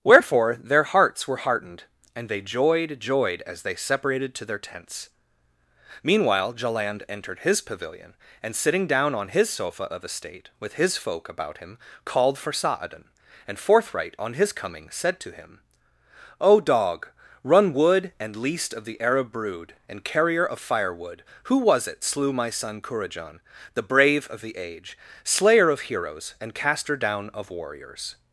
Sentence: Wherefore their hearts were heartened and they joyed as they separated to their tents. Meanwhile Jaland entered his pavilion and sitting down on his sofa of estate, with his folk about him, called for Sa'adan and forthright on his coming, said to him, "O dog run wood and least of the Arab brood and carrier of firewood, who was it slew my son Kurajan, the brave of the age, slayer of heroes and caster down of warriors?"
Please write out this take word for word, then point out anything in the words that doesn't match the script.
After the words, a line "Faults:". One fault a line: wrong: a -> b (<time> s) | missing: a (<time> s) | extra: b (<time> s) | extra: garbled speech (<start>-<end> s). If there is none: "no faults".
Wherefore their hearts were heartened and they joyed joyed as they separated to their tents. Meanwhile Jaland entered his pavilion and sitting down on his sofa of estate, with his folk about him, called for Sa'adan and forthright on his coming, said to him, "O dog run wood and least of the Arab brood and carrier of firewood, who was it slew my son Kurajan, the brave of the age, slayer of heroes and caster down of warriors?"
Faults:
extra: joyed (3.0 s)